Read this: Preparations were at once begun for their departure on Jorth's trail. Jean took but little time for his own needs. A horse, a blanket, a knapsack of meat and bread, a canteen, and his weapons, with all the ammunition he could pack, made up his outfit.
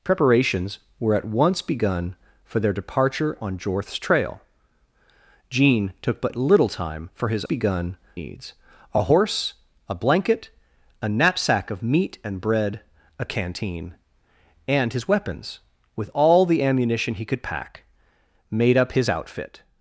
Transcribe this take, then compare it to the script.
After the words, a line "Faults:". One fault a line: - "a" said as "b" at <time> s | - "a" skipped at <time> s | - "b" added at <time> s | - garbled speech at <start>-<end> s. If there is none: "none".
Preparations were at once begun for their departure on Jorth's trail. Jean took but little time for his begun needs. A horse, a blanket, a knapsack of meat and bread, a canteen, and his weapons, with all the ammunition he could pack, made up his outfit.
Faults:
- "own" said as "begun" at 7.4 s